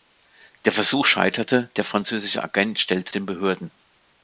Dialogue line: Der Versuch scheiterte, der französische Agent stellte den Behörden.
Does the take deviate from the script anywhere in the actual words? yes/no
no